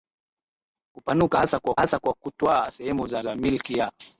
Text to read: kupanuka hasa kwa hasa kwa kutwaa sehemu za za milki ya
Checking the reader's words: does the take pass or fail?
pass